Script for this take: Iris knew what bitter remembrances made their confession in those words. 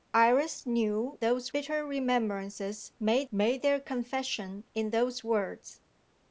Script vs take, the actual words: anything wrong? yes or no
yes